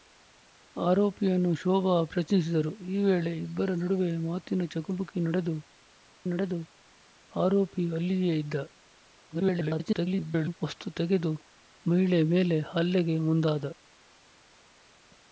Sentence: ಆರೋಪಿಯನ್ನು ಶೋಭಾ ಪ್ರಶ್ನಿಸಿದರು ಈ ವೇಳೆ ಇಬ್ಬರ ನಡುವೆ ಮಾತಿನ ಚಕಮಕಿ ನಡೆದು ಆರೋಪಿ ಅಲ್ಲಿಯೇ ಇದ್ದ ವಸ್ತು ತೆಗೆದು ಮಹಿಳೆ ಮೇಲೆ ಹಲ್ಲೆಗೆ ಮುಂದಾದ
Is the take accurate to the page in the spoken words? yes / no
no